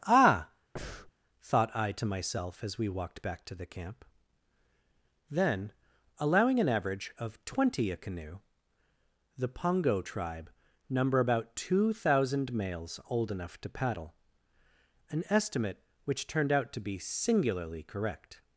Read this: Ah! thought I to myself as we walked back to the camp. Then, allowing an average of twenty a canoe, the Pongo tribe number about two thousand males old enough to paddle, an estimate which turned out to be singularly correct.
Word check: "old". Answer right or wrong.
right